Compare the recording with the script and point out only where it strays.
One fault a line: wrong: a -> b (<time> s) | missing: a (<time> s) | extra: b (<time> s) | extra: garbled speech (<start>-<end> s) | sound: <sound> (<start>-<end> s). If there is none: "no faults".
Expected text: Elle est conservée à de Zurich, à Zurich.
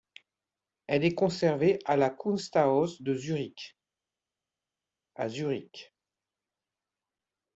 extra: la Kunsthaus (1.9 s)